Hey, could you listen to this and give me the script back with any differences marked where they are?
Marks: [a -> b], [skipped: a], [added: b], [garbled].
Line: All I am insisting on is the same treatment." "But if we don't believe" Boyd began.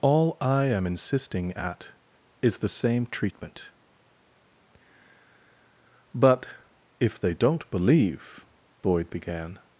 All I am insisting [on -> at] is the same treatment." "But if [we -> they] don't believe" Boyd began.